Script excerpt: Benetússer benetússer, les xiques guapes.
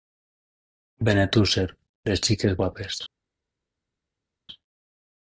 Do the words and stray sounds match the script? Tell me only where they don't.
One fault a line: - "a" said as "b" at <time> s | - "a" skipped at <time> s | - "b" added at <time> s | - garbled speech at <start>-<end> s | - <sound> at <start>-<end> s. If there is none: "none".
- "benetússer" skipped at 1.6 s